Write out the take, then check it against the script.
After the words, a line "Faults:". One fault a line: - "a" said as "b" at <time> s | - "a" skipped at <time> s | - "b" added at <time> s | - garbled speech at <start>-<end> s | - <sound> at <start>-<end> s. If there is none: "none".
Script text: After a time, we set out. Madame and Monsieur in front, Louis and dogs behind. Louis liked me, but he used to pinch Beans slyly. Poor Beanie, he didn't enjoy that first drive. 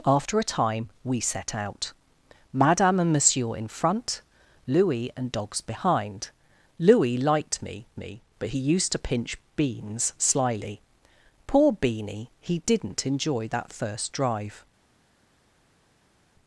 After a time, we set out. Madame and Monsieur in front, Louis and dogs behind. Louis liked me me, but he used to pinch Beans slyly. Poor Beanie, he didn't enjoy that first drive.
Faults:
- "me" added at 8.0 s